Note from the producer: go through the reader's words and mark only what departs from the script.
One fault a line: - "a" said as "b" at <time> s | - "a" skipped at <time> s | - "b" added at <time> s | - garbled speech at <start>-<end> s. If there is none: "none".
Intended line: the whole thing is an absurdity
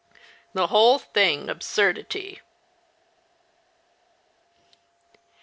- "is an" skipped at 1.5 s